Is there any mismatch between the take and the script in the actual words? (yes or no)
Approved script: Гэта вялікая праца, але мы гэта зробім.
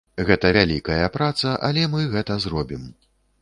no